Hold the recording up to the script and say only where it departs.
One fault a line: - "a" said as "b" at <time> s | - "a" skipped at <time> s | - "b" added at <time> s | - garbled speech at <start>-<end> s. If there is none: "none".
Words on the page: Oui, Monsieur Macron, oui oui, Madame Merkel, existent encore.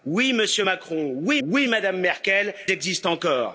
none